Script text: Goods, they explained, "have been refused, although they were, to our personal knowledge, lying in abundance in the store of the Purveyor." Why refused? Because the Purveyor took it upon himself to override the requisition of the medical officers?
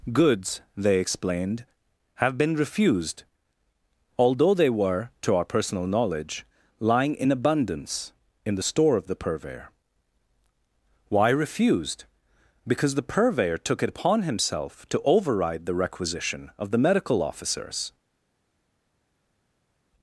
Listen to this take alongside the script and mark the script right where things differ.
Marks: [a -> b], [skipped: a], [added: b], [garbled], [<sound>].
Goods, they explained, "have been refused, although they were, to our personal knowledge, lying in abundance in the store of the Purveyor." Why refused? Because the Purveyor took it upon himself to override the requisition of the medical officers?